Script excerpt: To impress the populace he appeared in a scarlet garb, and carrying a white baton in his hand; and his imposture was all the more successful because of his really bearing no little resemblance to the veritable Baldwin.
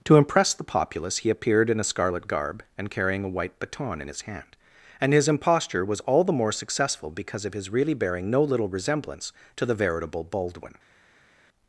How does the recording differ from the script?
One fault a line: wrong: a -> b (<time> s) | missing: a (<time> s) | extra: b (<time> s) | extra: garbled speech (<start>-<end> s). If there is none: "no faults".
no faults